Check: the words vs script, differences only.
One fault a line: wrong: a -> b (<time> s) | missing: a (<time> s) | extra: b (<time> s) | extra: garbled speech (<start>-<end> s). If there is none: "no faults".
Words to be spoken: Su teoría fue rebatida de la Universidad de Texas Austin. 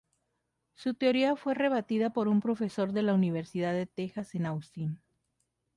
extra: por un profesor (2.1 s)
extra: en (4.3 s)